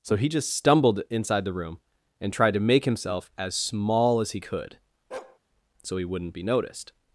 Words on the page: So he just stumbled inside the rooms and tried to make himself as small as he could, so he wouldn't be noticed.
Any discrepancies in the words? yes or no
yes